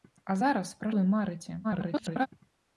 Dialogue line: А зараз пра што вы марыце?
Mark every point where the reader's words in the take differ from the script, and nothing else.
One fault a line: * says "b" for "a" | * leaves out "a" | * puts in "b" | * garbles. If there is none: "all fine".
* leaves out "што"
* garbles